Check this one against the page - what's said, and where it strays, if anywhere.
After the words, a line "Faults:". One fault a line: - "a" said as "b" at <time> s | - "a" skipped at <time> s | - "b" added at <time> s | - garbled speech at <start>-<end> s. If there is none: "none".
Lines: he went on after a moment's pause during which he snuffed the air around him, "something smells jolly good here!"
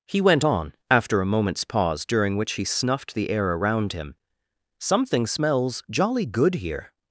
he went on after a moment's pause during which he snuffed the air around him, "something smells jolly good here!"
Faults:
none